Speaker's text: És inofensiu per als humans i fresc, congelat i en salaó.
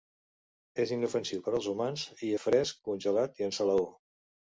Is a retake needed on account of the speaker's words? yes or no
no